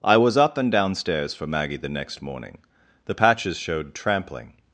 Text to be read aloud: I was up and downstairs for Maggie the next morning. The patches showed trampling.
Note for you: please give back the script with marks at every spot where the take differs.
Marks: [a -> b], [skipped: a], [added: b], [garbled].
I was up and downstairs for Maggie the next morning. The patches showed trampling.